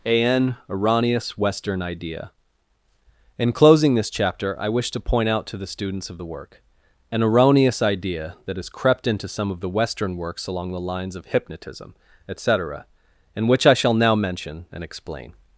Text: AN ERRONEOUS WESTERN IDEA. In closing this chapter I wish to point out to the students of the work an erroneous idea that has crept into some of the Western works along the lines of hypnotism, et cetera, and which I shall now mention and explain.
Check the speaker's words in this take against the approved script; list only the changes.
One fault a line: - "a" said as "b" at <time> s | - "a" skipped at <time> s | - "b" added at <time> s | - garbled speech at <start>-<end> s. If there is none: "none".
none